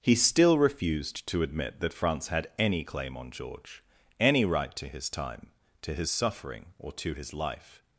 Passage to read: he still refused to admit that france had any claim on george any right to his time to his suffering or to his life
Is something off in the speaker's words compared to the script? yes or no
no